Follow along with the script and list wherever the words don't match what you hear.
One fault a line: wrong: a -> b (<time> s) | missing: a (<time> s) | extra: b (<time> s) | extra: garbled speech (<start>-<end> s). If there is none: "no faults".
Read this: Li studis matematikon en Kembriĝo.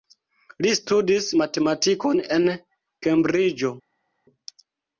no faults